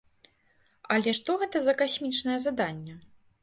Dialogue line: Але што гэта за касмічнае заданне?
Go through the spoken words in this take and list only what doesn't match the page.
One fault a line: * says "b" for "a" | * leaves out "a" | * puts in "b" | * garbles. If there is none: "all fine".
all fine